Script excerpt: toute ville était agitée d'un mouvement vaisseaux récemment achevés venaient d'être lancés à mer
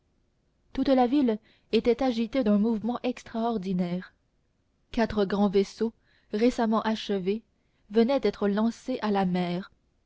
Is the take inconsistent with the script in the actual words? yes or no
yes